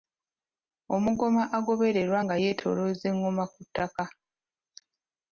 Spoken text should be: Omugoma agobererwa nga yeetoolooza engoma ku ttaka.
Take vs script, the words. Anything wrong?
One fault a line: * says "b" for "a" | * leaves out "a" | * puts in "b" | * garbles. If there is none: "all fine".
all fine